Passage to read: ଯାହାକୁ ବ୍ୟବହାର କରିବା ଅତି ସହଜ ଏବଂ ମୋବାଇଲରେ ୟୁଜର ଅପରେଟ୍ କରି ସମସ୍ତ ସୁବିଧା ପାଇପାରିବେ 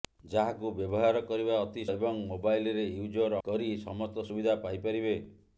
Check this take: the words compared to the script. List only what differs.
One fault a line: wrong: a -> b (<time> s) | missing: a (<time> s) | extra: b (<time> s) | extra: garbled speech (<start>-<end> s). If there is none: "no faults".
missing: ସହଜ (1.8 s)
missing: ଅପରେଟ୍ (3.4 s)